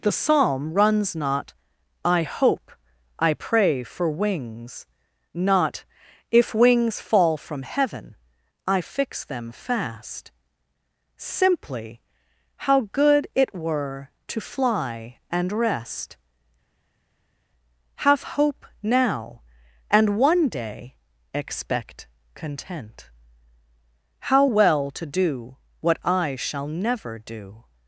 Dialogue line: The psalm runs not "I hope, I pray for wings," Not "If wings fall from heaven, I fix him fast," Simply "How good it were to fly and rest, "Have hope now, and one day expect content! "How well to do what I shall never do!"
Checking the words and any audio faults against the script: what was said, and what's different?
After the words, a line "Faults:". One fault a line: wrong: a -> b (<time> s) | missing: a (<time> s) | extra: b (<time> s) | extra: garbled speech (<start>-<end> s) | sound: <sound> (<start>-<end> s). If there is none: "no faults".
The psalm runs not "I hope, I pray for wings," Not "If wings fall from heaven, I fix them fast," Simply "How good it were to fly and rest, "Have hope now, and one day expect content! "How well to do what I shall never do!"
Faults:
wrong: him -> them (9.2 s)